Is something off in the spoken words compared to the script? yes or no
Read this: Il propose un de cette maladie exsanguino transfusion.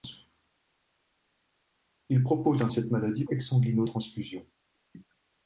no